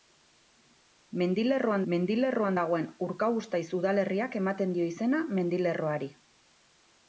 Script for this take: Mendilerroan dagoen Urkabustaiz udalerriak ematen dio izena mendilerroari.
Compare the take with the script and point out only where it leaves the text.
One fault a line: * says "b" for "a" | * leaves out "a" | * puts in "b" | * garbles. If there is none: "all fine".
* puts in "mendilerroan"